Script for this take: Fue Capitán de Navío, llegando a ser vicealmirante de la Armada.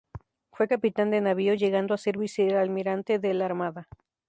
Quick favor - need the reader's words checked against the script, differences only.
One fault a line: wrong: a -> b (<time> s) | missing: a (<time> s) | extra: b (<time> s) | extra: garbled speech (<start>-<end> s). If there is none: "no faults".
no faults